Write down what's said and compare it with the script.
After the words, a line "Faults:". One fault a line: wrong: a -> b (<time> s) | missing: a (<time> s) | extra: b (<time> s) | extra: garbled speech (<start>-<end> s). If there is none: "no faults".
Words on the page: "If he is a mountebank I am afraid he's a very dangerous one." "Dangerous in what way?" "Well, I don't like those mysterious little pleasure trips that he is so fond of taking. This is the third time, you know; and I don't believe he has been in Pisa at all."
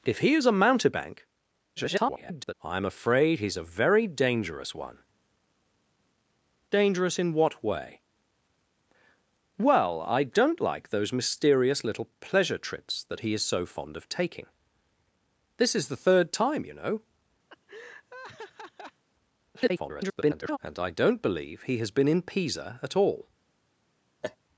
"If he is a mountebank [garbled] I am afraid he's a very dangerous one." "Dangerous in what way?" "Well, I don't like those mysterious little pleasure trips that he is so fond of taking. This is the third time, you know; [garbled] and I don't believe he has been in Pisa at all."
Faults:
extra: garbled speech (1.8-2.5 s)
extra: garbled speech (19.5-20.6 s)